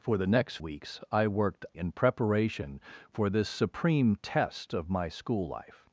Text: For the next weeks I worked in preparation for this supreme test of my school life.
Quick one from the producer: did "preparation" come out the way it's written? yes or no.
yes